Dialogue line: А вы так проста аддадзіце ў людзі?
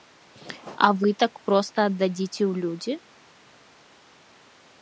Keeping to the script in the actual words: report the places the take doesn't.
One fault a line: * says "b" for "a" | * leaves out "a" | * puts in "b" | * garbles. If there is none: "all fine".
all fine